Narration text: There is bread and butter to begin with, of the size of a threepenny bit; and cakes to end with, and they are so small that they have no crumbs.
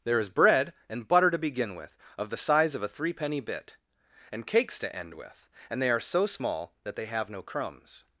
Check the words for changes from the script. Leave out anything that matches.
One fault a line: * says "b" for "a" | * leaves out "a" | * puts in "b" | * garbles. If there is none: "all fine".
all fine